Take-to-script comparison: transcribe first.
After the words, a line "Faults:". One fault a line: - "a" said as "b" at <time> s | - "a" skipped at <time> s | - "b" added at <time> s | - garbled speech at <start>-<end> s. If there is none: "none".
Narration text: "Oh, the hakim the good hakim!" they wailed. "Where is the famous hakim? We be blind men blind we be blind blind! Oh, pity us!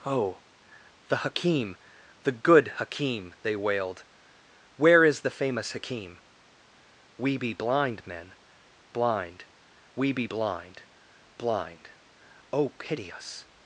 "Oh, the hakim the good hakim!" they wailed. "Where is the famous hakim? We be blind men blind we be blind blind! Oh, pity us!
Faults:
none